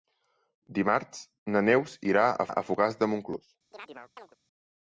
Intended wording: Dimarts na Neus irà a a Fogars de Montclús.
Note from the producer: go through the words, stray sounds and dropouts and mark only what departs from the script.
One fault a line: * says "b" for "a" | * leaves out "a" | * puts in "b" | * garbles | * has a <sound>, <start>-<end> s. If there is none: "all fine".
* has a chirp, 3.7-4.4 s